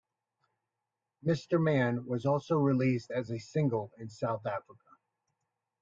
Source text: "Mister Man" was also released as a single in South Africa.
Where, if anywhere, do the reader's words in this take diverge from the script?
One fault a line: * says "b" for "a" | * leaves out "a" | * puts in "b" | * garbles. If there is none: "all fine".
all fine